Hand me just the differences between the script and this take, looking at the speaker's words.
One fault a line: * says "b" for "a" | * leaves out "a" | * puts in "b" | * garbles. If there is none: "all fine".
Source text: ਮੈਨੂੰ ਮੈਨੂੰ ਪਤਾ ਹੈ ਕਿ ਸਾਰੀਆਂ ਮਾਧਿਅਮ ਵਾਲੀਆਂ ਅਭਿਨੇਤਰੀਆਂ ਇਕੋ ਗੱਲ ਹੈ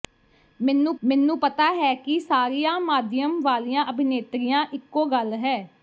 all fine